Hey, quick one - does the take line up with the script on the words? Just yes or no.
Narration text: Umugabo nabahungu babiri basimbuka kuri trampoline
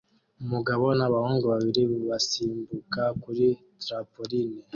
yes